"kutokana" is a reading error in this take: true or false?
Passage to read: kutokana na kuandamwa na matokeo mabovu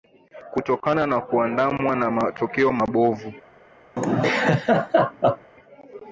false